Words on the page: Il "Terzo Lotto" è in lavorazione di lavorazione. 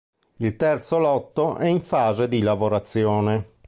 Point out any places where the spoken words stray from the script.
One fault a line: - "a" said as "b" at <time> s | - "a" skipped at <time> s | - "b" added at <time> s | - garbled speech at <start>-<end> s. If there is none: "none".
- "lavorazione" said as "fase" at 1.8 s